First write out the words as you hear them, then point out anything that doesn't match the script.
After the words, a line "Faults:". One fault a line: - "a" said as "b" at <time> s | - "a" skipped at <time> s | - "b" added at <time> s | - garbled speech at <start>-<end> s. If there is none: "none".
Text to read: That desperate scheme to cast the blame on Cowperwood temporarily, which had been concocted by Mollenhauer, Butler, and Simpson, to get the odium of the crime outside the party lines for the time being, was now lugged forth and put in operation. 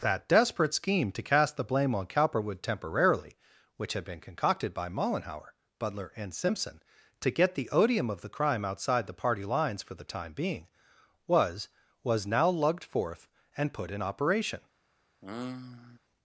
That desperate scheme to cast the blame on Cowperwood temporarily, which had been concocted by Mollenhauer, Butler, and Simpson, to get the odium of the crime outside the party lines for the time being, was was now lugged forth and put in operation.
Faults:
- "was" added at 12.0 s